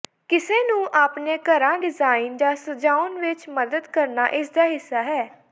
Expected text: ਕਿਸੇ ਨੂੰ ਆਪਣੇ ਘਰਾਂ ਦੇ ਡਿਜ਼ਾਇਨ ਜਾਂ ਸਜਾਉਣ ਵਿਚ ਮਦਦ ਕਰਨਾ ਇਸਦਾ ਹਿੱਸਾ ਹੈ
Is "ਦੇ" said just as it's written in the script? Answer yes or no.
no